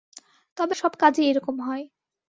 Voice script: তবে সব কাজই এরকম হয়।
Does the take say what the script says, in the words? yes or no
yes